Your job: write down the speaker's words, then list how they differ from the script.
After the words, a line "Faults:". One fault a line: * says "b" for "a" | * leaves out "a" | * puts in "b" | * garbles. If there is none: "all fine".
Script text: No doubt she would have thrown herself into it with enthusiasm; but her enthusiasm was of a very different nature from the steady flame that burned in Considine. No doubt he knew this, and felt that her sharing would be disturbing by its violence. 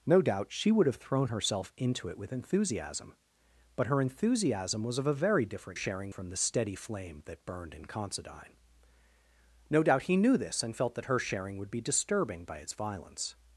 No doubt she would have thrown herself into it with enthusiasm; but her enthusiasm was of a very different sharing from the steady flame that burned in Considine. No doubt he knew this, and felt that her sharing would be disturbing by its violence.
Faults:
* says "sharing" for "nature"